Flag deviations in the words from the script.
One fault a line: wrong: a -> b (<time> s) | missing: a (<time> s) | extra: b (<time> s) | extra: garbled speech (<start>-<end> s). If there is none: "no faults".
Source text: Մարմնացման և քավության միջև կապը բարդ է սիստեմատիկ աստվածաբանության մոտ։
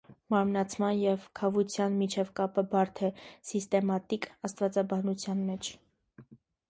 wrong: մոտ -> մեջ (5.5 s)